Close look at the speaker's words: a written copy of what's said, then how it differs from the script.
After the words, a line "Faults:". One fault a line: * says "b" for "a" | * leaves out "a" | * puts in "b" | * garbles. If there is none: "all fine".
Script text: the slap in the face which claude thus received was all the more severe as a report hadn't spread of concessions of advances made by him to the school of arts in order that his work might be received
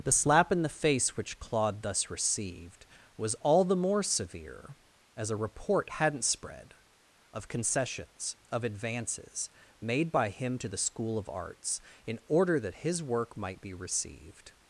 the slap in the face which claude thus received was all the more severe as a report hadn't spread of concessions of advances made by him to the school of arts in order that his work might be received
Faults:
all fine